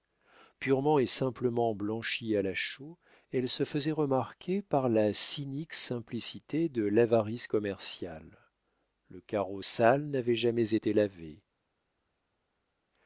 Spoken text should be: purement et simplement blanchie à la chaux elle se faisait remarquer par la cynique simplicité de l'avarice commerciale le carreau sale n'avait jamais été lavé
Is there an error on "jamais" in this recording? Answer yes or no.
no